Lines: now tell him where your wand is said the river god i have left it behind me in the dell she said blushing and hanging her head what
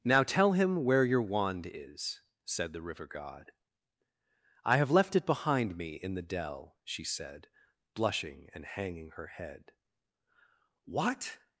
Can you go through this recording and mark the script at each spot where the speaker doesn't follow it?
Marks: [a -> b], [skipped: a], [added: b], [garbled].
now tell him where your wand is said the river god i have left it behind me in the dell she said blushing and hanging her head what